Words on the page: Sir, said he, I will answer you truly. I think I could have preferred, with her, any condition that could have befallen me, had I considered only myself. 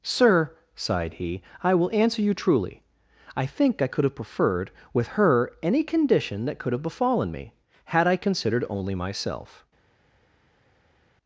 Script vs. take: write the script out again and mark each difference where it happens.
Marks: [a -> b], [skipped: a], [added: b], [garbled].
Sir, [said -> sighed] he, I will answer you truly. I think I could have preferred, with her, any condition that could have befallen me, had I considered only myself.